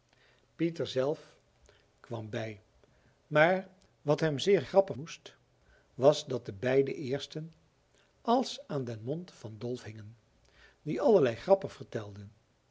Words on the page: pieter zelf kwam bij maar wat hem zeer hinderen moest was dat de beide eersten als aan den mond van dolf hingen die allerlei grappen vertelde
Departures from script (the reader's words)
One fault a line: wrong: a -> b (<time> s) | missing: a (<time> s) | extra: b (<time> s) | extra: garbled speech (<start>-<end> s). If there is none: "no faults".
wrong: hinderen -> grappen (4.6 s)